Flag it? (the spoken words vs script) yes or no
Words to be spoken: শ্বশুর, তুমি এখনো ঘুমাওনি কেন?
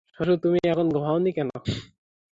no